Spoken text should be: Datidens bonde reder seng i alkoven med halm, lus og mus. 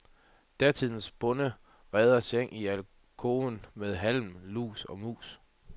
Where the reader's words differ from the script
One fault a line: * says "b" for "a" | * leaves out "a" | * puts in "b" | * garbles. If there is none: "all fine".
all fine